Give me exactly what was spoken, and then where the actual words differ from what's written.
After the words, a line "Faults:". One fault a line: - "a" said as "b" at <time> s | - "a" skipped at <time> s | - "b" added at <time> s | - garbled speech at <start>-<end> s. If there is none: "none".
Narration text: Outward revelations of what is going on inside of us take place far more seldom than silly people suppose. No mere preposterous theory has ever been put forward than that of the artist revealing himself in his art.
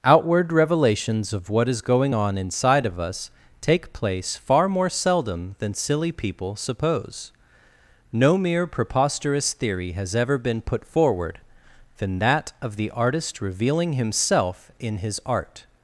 Outward revelations of what is going on inside of us take place far more seldom than silly people suppose. No mere preposterous theory has ever been put forward than that of the artist revealing himself in his art.
Faults:
none